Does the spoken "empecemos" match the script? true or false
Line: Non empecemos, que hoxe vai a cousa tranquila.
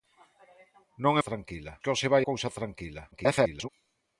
false